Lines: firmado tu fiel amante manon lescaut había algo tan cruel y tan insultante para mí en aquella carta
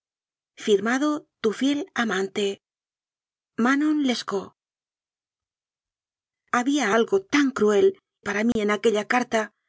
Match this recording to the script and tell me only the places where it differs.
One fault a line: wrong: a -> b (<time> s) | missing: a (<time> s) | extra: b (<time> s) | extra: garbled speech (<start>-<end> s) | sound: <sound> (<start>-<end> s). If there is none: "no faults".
missing: y tan insultante (8.0 s)
sound: dropout (8.5-8.6 s)